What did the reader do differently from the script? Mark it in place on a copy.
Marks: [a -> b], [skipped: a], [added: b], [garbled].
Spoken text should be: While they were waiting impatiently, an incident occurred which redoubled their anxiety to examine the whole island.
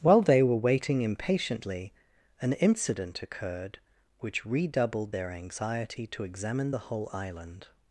While they were waiting impatiently, an incident occurred which redoubled their anxiety to examine the whole island.